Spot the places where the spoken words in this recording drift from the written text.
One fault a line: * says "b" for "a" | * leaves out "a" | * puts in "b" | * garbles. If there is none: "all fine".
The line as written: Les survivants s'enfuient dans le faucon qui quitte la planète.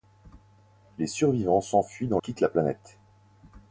* leaves out "le faucon qui"